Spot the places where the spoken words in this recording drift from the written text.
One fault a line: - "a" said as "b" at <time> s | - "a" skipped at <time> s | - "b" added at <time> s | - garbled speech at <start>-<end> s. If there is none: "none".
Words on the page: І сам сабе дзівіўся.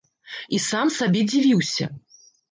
none